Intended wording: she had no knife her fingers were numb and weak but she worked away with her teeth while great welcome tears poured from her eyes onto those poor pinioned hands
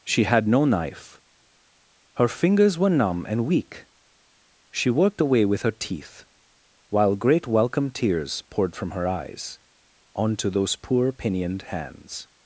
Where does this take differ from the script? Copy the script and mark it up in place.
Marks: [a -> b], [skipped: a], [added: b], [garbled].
she had no knife her fingers were numb and weak [skipped: but] she worked away with her teeth while great welcome tears poured from her eyes onto those poor pinioned hands